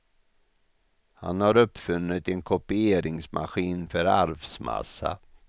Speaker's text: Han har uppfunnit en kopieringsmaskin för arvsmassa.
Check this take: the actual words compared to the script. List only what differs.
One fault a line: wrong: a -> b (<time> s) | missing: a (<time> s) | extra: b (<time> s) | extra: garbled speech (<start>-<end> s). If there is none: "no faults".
no faults